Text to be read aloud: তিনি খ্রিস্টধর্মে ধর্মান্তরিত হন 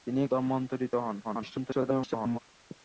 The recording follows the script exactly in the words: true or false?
false